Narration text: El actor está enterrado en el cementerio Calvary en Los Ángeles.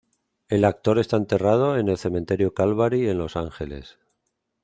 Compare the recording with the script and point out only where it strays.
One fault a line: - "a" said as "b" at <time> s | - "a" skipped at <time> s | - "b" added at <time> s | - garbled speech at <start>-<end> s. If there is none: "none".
none